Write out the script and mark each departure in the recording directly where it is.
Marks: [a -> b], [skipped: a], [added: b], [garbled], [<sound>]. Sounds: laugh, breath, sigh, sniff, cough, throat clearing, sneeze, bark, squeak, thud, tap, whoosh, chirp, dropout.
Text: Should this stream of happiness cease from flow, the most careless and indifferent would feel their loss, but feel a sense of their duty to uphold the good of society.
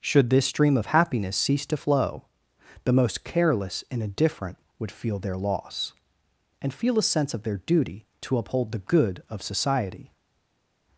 Should this stream of happiness cease [from -> to] flow, the most careless and indifferent would feel their loss, [but -> and] feel a sense of their duty to uphold the good of society.